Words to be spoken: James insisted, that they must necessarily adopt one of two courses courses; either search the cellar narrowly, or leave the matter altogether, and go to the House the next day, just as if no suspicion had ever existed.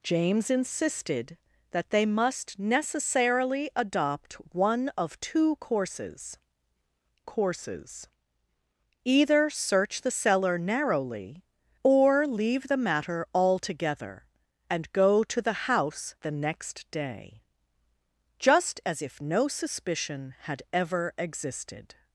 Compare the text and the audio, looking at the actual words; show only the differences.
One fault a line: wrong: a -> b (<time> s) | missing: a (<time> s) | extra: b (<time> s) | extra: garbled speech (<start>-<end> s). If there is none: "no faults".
no faults